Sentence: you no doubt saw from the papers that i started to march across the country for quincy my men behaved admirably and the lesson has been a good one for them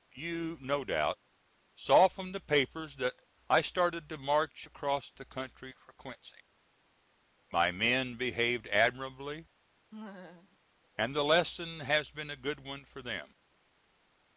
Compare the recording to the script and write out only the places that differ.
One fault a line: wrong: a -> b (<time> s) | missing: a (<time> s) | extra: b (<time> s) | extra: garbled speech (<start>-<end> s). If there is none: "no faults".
no faults